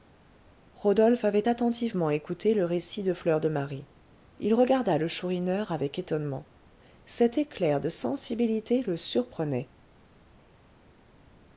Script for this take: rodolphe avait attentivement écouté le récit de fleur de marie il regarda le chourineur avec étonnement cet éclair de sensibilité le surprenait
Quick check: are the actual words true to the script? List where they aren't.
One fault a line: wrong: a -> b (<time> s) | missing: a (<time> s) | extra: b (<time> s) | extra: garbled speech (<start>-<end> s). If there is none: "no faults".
no faults